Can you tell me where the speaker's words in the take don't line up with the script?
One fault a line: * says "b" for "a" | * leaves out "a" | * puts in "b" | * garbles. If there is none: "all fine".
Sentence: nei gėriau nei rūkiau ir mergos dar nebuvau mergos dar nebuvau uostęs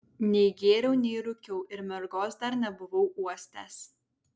* leaves out "mergos dar nebuvau"